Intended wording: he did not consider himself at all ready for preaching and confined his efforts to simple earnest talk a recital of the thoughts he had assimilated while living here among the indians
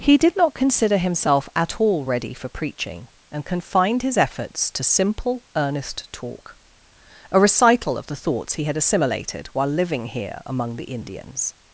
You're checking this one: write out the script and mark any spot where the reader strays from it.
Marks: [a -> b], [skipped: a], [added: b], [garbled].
he did not consider himself at all ready for preaching and confined his efforts to simple earnest talk a recital of the thoughts he had assimilated while living here among the indians